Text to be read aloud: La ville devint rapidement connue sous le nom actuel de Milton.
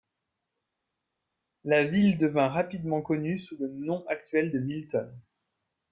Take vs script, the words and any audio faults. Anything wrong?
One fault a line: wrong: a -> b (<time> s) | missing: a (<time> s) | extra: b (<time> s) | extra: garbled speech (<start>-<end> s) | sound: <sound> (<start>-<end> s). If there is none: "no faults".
no faults